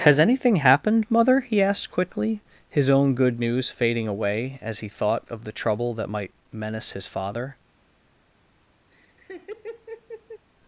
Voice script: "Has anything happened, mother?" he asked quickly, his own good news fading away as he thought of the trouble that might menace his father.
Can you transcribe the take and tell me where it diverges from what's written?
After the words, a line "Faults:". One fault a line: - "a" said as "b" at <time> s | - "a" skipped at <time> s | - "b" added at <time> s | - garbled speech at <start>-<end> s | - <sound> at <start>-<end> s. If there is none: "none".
"Has anything happened, mother?" he asked quickly, his own good news fading away as he thought of the trouble that might menace his father.
Faults:
- laugh at 8.9-10.5 s